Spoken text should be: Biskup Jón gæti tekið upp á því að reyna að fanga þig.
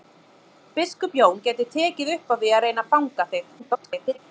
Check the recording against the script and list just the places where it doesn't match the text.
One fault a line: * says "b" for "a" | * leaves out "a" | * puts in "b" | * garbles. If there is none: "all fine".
* garbles